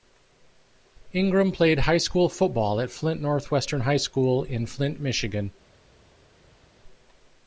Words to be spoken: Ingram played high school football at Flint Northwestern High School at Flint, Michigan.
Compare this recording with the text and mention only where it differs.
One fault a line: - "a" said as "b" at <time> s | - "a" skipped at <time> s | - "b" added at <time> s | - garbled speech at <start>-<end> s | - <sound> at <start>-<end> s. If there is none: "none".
- "at" said as "in" at 4.4 s